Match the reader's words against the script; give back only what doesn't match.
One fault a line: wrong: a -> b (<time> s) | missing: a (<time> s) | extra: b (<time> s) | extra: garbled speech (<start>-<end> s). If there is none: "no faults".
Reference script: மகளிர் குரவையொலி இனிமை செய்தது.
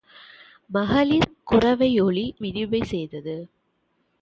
no faults